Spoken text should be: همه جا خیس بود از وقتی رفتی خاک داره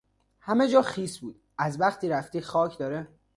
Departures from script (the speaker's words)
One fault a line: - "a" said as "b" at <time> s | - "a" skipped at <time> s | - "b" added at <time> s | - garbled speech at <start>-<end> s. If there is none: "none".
none